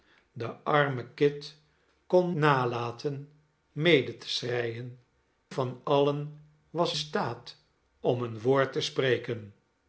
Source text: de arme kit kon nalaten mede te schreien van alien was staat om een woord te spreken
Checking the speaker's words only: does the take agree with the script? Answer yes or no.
yes